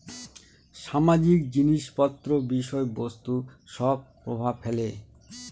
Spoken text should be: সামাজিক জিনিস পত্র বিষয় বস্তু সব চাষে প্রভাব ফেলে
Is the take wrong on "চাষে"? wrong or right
wrong